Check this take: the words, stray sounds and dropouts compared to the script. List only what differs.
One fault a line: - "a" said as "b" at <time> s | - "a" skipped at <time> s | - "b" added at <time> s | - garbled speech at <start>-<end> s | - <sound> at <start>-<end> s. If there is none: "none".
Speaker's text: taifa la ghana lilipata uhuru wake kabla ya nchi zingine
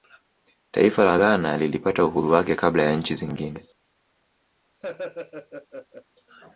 - laugh at 4.8-6.0 s